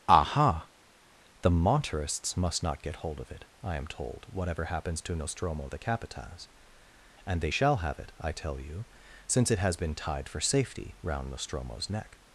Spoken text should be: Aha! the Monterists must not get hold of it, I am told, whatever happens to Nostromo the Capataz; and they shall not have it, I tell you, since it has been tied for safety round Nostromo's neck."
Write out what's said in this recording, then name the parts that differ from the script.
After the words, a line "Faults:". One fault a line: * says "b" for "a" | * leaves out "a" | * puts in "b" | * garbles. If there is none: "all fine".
Aha! the Monterists must not get hold of it, I am told, whatever happens to Nostromo the Capataz; and they shall have it, I tell you, since it has been tied for safety round Nostromo's neck."
Faults:
* leaves out "not"